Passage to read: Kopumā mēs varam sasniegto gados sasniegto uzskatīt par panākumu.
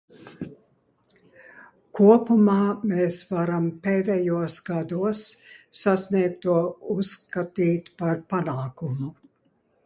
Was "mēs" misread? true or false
false